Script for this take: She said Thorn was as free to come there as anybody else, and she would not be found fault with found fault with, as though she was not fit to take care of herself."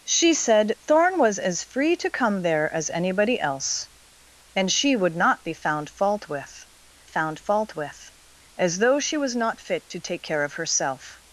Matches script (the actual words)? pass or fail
pass